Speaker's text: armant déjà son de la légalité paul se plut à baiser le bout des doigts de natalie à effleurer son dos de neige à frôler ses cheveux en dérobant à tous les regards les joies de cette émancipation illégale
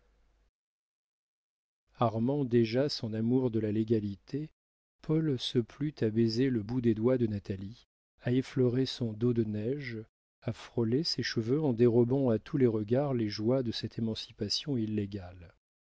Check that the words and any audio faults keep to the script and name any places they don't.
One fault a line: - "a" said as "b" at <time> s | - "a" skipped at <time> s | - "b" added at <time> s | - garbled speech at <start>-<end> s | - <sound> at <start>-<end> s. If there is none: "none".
- "amour" added at 3.1 s